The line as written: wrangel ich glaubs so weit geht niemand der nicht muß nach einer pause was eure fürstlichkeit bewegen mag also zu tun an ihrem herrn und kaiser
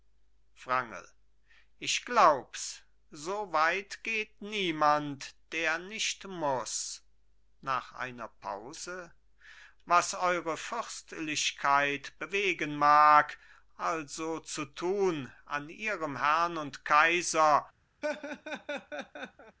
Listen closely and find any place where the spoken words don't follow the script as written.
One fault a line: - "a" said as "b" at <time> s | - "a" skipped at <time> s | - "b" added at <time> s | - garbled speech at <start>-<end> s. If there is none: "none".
none